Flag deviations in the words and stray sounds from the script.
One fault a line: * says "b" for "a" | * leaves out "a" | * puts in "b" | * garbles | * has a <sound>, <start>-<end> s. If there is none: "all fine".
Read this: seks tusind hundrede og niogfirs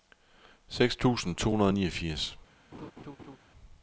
* puts in "to"
* has a laugh, 2.7-3.4 s